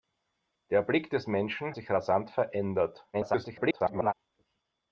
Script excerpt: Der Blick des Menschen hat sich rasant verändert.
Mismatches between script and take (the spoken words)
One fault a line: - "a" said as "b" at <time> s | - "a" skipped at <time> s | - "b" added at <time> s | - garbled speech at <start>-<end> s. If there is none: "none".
- "hat" skipped at 1.8 s
- garbled speech at 3.1-4.1 s